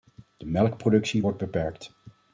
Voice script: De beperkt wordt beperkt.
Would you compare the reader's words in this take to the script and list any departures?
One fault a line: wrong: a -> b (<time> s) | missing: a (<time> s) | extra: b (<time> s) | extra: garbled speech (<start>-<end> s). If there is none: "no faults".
wrong: beperkt -> melkproductie (0.5 s)